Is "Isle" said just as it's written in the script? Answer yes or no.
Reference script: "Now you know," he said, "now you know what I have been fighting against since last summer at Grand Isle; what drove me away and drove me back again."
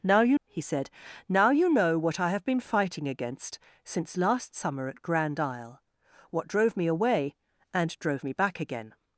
yes